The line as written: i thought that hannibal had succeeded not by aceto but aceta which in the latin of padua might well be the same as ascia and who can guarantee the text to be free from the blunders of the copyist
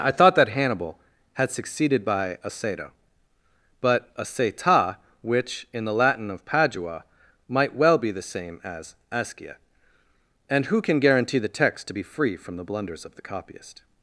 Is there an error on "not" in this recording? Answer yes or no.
yes